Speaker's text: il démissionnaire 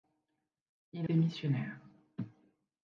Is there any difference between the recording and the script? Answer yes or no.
no